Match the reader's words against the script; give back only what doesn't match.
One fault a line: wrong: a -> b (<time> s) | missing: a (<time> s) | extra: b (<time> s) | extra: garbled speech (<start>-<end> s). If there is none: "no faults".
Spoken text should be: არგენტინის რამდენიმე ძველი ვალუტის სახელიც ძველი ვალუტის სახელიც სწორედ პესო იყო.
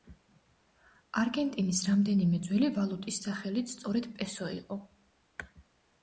missing: ძველი ვალუტის სახელიც (3.7 s)